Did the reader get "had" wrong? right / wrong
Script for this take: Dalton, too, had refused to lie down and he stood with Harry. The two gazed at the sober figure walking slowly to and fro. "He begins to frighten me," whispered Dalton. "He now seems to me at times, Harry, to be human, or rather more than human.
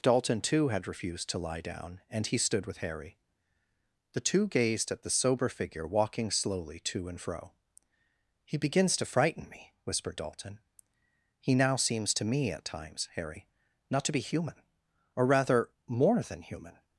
right